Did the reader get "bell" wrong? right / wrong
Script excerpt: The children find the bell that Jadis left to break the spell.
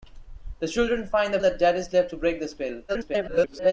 wrong